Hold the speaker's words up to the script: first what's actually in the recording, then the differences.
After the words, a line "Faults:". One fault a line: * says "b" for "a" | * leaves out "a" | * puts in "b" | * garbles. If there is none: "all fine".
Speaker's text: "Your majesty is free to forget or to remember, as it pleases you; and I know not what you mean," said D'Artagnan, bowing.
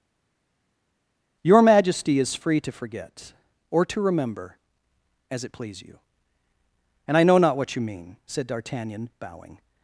"Your majesty is free to forget or to remember, as it please you; and I know not what you mean," said D'Artagnan, bowing.
Faults:
* says "please" for "pleases"